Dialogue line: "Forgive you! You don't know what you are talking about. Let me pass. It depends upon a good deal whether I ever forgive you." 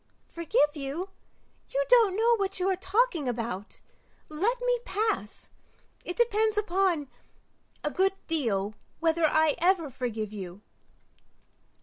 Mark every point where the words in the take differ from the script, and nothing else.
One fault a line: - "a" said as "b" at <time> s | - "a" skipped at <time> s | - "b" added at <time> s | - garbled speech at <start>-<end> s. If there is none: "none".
none